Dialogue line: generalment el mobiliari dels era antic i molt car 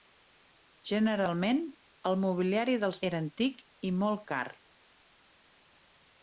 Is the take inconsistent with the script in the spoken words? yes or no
no